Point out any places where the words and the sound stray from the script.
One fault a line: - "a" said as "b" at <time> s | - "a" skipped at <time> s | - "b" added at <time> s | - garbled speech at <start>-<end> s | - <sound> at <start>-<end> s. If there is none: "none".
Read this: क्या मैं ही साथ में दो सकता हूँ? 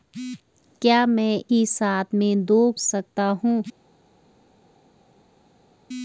none